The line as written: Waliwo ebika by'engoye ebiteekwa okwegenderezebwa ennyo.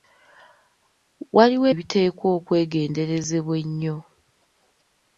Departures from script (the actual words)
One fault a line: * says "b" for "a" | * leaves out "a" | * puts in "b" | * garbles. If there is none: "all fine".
* leaves out "ebika by'engoye"